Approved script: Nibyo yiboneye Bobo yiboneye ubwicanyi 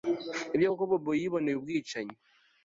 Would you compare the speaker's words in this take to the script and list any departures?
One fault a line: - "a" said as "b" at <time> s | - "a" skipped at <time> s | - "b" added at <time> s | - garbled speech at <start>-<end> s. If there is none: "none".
- "yiboneye" said as "koko" at 0.7 s